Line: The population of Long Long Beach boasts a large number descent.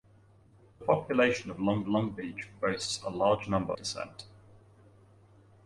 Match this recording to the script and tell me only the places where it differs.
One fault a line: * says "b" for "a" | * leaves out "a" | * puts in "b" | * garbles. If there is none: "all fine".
all fine